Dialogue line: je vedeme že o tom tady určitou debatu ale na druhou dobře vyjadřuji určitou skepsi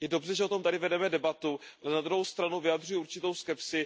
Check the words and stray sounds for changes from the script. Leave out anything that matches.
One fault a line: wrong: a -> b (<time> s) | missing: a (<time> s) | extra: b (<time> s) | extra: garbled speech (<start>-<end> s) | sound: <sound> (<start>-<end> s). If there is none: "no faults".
wrong: vedeme -> dobře (0.1 s)
wrong: určitou -> vedeme (0.8 s)
wrong: dobře -> stranu (2.2 s)